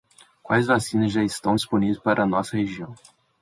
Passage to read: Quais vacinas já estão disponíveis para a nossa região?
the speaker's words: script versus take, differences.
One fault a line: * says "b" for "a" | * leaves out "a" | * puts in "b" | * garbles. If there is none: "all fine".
all fine